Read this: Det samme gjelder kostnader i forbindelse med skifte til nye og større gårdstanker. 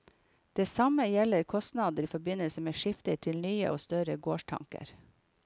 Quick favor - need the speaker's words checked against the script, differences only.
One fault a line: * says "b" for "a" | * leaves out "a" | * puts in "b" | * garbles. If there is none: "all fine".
all fine